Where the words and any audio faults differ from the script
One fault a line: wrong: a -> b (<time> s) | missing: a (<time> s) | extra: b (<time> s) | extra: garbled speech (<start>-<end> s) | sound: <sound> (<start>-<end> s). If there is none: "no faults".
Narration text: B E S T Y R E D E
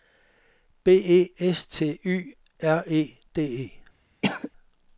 sound: cough (4.2-4.5 s)